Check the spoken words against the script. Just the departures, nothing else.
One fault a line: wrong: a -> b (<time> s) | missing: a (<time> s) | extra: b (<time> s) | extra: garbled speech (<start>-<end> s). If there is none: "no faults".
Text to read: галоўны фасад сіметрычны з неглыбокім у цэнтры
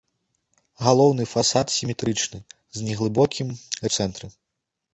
no faults